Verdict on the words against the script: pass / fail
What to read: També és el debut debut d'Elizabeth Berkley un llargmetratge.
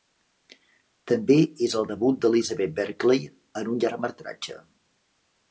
fail